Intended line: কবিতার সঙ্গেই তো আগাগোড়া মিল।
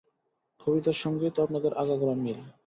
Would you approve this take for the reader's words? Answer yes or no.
no